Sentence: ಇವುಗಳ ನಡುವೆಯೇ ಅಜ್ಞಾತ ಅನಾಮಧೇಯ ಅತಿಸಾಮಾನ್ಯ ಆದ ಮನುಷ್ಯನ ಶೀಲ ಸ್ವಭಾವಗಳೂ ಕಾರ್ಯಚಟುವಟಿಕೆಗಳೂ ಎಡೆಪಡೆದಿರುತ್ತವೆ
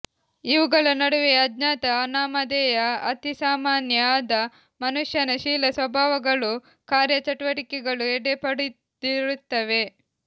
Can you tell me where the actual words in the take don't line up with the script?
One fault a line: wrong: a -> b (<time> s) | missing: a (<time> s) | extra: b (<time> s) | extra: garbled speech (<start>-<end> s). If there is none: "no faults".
no faults